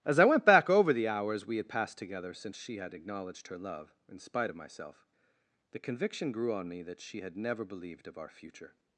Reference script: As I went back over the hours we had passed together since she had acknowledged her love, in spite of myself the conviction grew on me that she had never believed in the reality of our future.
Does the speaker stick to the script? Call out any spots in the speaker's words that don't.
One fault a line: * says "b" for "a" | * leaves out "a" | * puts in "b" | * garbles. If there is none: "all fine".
* leaves out "in the reality"